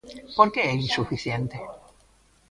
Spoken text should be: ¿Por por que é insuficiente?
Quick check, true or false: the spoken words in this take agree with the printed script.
false